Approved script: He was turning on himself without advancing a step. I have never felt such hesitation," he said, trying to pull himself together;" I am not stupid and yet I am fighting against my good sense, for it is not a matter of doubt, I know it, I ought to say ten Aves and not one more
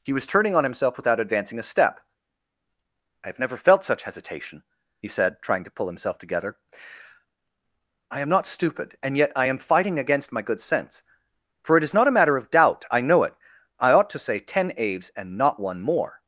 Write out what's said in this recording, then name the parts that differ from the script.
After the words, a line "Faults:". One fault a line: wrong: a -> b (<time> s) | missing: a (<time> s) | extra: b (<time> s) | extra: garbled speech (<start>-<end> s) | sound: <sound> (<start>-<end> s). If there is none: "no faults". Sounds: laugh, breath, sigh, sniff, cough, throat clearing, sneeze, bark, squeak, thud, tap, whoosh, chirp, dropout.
He was turning on himself without advancing a step. I have never felt such hesitation," he said, trying to pull himself together;" I am not stupid and yet I am fighting against my good sense, for it is not a matter of doubt, I know it, I ought to say ten Aves and not one more
Faults:
no faults